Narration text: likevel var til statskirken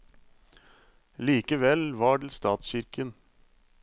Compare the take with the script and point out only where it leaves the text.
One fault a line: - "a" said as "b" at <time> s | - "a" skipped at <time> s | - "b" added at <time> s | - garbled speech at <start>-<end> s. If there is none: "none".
none